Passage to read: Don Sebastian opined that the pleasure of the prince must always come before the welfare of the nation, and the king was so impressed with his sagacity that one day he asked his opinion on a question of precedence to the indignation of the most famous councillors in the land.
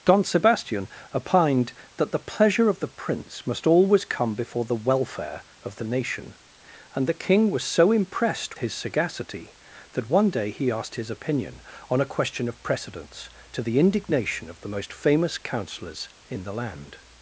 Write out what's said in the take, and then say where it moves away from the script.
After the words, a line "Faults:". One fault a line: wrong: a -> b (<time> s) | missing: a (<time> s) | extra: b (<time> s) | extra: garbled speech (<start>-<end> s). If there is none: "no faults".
Don Sebastian opined that the pleasure of the prince must always come before the welfare of the nation, and the king was so impressed his sagacity that one day he asked his opinion on a question of precedence to the indignation of the most famous councillors in the land.
Faults:
missing: with (8.6 s)